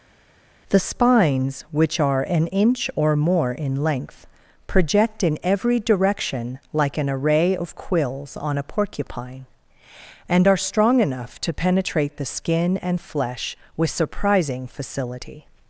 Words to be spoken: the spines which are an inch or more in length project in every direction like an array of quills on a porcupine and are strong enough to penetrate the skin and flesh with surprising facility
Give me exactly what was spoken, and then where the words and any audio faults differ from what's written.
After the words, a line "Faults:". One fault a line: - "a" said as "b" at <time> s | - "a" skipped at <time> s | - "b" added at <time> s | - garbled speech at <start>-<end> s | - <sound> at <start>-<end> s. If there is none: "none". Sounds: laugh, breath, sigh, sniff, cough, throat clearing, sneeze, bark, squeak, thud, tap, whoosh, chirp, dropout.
the spines which are an inch or more in length project in every direction like an array of quills on a porcupine and are strong enough to penetrate the skin and flesh with surprising facility
Faults:
none